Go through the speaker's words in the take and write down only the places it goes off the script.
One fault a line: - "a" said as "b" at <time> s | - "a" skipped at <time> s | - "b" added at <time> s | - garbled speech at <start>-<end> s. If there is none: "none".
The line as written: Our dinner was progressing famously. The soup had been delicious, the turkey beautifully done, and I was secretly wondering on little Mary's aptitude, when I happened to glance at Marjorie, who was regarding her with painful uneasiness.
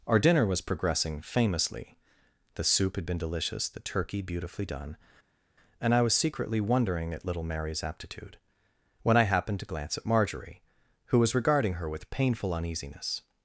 - "on" said as "at" at 7.1 s